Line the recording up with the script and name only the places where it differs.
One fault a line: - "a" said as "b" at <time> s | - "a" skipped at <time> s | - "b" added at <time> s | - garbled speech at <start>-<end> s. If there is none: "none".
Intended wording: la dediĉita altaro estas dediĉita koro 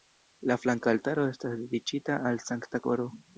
- "dediĉita" said as "flanka" at 0.6 s
- "al sankta" added at 2.3 s